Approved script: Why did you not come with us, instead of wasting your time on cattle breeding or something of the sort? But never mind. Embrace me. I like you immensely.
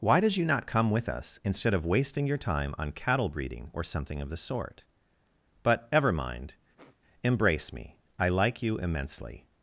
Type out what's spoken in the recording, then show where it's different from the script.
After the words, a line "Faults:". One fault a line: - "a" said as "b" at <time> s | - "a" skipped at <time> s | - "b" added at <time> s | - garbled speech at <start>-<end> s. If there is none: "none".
Why did you not come with us, instead of wasting your time on cattle breeding or something of the sort? But ever mind. Embrace me. I like you immensely.
Faults:
- "never" said as "ever" at 5.9 s